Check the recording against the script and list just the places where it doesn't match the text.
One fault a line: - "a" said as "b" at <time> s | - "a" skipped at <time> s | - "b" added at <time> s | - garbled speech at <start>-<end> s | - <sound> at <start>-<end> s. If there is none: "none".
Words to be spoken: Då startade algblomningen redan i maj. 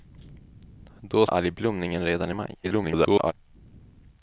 - "startade" skipped at 1.2 s
- garbled speech at 2.6-3.3 s